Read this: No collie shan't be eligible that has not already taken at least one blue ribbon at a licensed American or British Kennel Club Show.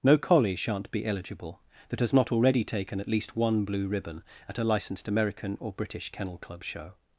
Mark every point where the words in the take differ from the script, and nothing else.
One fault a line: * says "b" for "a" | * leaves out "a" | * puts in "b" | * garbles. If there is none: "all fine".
all fine